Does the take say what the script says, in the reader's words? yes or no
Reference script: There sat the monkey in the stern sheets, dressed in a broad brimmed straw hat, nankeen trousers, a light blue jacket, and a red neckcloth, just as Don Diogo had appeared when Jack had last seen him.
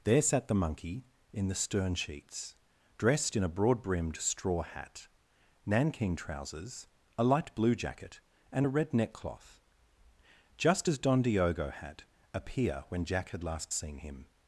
no